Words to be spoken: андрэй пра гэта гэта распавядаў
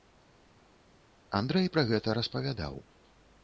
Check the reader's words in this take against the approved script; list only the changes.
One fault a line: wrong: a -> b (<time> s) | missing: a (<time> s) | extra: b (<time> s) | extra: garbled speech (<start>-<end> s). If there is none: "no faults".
missing: гэта (2.2 s)